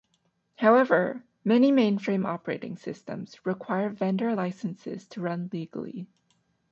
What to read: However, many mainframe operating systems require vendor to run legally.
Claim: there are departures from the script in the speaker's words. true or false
true